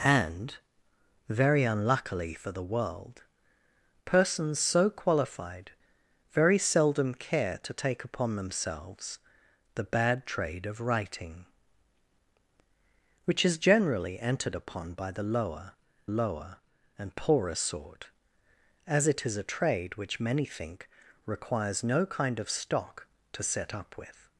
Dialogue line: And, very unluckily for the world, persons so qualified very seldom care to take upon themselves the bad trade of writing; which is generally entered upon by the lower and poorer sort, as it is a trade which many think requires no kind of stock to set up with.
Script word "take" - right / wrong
right